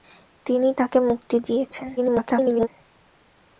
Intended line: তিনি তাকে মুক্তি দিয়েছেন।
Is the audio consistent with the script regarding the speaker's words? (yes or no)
no